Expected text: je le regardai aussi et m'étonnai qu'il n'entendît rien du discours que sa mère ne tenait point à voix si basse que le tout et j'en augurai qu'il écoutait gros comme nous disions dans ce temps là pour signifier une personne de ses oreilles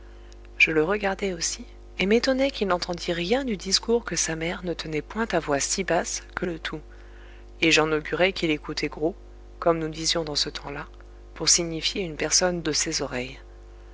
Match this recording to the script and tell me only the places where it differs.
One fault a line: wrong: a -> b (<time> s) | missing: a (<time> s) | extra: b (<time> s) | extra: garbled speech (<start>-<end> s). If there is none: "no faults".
no faults